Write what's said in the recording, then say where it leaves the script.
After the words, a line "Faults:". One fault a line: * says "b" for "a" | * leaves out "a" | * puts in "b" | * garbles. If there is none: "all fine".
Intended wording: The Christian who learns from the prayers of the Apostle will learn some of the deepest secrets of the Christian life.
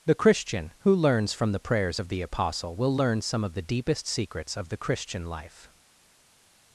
The Christian who learns from the prayers of the Apostle will learn some of the deepest secrets of the Christian life.
Faults:
all fine